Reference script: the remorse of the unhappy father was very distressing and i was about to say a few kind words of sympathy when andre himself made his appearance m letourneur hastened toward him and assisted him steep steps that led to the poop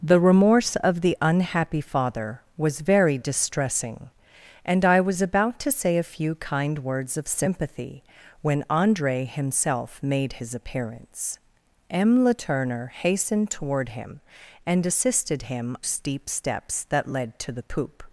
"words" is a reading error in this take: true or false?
false